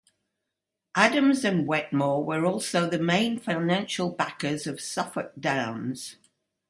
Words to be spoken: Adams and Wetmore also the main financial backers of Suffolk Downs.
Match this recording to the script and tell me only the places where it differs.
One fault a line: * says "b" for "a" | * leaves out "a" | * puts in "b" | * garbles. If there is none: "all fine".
* puts in "were"